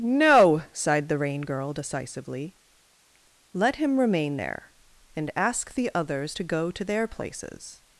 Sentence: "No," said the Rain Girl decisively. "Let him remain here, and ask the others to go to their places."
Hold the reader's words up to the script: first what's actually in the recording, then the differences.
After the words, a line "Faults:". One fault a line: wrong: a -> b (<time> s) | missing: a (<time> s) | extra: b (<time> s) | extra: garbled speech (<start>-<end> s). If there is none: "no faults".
"No," sighed the Rain Girl decisively. "Let him remain there, and ask the others to go to their places."
Faults:
wrong: said -> sighed (0.7 s)
wrong: here -> there (4.4 s)